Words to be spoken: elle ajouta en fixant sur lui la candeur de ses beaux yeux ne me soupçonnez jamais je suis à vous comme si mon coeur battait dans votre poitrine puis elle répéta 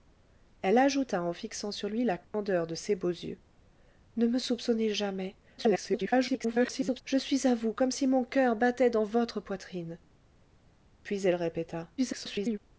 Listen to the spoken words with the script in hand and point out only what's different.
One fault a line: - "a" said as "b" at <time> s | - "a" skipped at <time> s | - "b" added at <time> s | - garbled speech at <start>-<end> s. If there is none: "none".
- garbled speech at 5.6-7.0 s
- garbled speech at 12.0-12.6 s